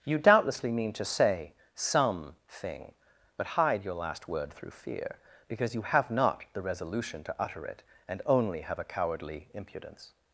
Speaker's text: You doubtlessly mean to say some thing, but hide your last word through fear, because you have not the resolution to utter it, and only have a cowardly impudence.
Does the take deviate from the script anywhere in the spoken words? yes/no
no